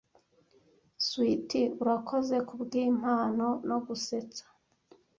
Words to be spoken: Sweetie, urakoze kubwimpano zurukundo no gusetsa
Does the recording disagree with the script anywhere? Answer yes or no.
yes